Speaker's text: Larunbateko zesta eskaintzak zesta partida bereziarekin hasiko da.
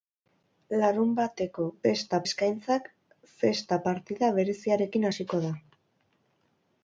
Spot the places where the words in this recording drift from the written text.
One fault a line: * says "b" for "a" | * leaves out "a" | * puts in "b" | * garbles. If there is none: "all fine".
all fine